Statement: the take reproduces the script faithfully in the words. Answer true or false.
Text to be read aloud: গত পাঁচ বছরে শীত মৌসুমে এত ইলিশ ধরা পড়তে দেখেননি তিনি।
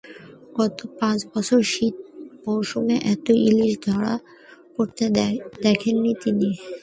true